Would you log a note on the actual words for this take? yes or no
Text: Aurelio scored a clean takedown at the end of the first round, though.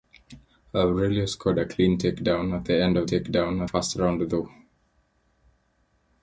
yes